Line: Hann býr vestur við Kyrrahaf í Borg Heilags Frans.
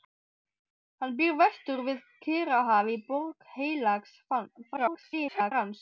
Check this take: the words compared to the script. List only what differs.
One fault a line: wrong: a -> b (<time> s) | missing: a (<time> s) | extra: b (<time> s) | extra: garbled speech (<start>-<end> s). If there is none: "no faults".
extra: garbled speech (4.8-5.5 s)